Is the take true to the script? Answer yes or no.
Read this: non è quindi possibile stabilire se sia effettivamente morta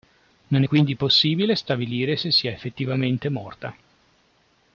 yes